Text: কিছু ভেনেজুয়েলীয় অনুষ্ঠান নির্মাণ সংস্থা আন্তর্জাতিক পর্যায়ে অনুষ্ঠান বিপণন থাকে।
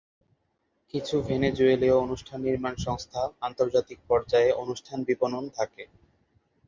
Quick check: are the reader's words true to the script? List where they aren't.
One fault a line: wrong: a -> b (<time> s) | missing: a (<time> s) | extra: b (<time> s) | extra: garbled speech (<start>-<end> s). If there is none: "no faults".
no faults